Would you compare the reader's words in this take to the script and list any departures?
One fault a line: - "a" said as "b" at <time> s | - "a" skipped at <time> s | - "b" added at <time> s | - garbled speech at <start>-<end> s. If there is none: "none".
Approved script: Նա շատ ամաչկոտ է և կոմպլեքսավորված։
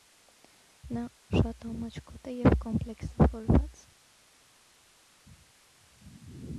none